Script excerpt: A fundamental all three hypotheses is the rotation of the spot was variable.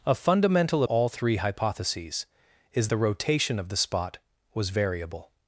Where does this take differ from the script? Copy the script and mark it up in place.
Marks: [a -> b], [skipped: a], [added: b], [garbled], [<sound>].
A fundamental all three hypotheses is the rotation of the spot was variable.